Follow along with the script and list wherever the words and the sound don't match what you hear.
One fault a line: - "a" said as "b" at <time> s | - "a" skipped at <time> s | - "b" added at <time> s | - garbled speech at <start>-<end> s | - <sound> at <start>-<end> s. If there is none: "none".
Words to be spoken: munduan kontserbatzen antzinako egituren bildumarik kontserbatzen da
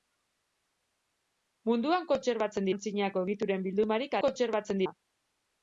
none